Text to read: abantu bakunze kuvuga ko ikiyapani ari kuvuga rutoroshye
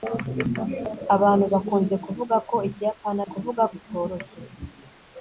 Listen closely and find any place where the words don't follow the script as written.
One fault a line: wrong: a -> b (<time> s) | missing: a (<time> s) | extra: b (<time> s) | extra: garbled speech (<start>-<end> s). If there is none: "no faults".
no faults